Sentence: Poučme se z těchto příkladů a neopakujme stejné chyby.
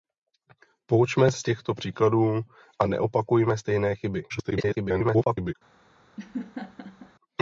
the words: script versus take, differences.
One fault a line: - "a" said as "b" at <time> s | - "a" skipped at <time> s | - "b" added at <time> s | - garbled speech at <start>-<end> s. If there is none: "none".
- "se" skipped at 1.3 s
- garbled speech at 4.3-5.5 s